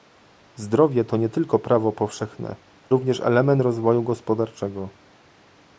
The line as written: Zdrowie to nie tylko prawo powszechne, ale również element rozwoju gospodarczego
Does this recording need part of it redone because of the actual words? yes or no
yes